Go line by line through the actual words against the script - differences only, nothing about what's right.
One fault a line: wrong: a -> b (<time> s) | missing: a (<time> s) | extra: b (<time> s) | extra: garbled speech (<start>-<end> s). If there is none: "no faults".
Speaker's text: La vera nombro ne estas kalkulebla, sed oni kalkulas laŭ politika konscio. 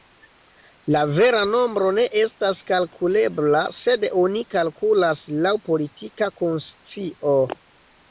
no faults